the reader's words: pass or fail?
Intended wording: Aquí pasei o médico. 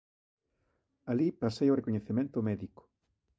fail